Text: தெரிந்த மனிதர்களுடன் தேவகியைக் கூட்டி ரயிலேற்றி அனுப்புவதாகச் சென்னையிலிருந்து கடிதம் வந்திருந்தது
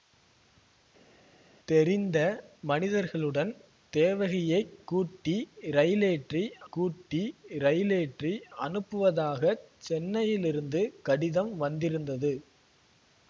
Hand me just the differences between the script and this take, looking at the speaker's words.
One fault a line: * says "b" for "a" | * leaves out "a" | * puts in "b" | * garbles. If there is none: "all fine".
* puts in "கூட்டி ரயிலேற்றி"